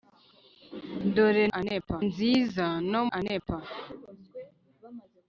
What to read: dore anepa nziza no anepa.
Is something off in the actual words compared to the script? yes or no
no